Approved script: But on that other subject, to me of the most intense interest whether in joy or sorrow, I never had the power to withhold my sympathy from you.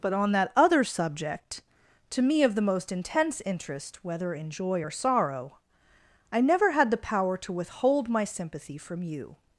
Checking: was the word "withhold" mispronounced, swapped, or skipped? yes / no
no